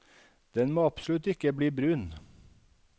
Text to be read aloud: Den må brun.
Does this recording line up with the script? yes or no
no